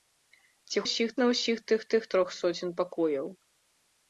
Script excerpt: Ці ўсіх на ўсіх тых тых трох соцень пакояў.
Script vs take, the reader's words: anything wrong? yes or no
no